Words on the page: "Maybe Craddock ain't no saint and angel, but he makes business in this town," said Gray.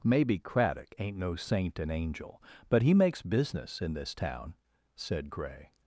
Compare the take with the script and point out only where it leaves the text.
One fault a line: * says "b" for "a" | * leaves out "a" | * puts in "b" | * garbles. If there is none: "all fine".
all fine